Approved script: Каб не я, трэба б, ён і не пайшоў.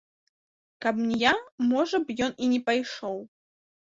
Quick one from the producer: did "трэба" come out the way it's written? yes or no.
no